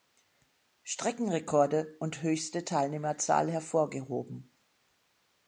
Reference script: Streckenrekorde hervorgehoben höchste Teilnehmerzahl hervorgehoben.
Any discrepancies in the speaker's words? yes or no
yes